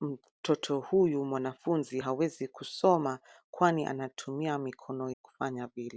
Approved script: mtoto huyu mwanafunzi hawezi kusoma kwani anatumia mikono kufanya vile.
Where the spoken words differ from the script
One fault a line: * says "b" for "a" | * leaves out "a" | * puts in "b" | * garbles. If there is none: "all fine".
all fine